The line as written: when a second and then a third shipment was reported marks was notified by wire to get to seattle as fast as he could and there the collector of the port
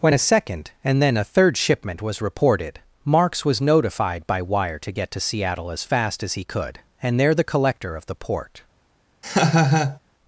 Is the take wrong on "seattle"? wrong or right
right